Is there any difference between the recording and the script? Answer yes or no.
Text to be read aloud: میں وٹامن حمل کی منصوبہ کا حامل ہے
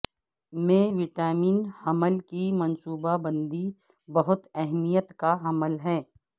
yes